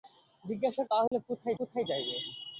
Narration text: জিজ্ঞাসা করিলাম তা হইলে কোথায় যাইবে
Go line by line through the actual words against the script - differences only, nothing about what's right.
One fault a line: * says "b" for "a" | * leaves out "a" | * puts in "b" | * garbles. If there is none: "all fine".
* leaves out "করিলাম"
* puts in "কোথায়"